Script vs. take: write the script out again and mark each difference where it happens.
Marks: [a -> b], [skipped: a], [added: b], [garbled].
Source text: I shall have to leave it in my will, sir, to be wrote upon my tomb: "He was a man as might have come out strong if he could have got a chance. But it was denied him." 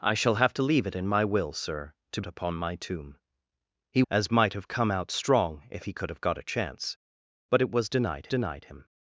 I shall have to leave it in my will, sir, to [skipped: be wrote] upon my tomb: "He [skipped: was a man] as might have come out strong if he could have got a chance. But it was denied [added: denied] him."